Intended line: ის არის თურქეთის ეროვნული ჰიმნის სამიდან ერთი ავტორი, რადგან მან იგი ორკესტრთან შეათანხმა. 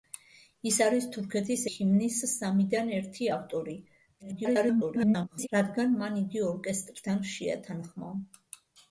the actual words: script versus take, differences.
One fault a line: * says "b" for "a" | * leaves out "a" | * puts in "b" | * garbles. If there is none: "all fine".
* leaves out "ეროვნული"
* garbles